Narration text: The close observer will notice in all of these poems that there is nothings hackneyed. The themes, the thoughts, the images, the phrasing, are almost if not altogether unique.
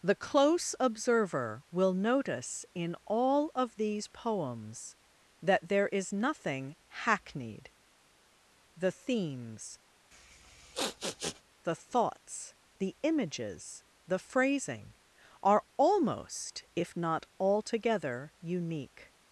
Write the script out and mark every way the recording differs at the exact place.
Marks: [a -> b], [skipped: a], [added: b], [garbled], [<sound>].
The close observer will notice in all of these poems that there is [nothings -> nothing] hackneyed. The themes, [sniff] the thoughts, the images, the phrasing, are almost if not altogether unique.